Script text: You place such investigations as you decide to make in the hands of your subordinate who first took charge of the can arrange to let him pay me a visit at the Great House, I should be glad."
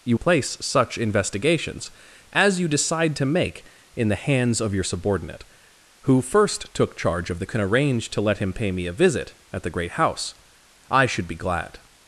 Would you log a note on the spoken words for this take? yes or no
no